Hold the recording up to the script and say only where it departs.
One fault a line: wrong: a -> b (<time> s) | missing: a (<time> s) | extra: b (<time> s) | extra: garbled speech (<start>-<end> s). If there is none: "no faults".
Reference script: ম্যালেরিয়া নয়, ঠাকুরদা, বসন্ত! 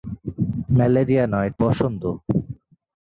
missing: ঠাকুরদা (1.5 s)